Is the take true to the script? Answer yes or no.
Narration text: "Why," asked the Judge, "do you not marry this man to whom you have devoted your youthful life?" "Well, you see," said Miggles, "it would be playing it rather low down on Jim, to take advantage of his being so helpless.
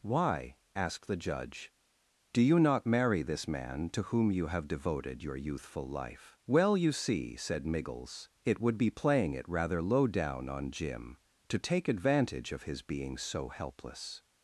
yes